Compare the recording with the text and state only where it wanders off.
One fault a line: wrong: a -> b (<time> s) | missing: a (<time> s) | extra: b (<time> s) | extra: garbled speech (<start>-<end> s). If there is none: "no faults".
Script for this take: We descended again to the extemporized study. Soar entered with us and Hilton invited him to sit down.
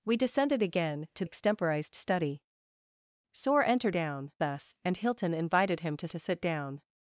missing: the (1.2 s)
wrong: with -> down (3.9 s)
extra: to (6.1 s)